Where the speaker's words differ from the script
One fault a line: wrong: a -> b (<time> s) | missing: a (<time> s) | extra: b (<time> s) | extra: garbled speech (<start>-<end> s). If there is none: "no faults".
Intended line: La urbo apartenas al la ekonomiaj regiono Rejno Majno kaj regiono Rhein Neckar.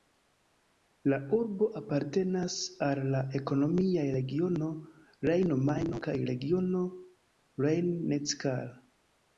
no faults